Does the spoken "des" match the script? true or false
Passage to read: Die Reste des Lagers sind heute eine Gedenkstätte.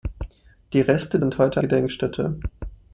false